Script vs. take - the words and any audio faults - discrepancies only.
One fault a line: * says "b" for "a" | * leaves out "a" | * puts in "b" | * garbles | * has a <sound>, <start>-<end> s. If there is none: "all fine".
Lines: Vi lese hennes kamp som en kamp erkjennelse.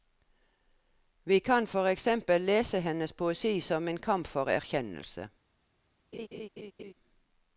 * puts in "kan for eksempel"
* says "poesi" for "kamp"
* puts in "for"
* has a laugh, 6.1-6.9 s